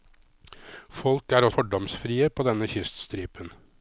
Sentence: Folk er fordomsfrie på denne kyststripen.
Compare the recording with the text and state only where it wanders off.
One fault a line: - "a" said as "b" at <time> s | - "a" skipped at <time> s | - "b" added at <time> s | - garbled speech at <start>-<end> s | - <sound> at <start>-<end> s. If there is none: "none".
none